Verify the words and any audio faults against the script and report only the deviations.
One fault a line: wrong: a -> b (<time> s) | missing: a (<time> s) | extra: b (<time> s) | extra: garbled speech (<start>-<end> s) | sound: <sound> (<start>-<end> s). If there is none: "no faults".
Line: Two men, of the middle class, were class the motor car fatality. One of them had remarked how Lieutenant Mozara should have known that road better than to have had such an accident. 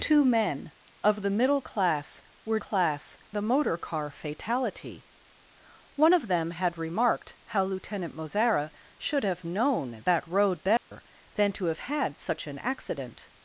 sound: dropout (10.8-10.9 s)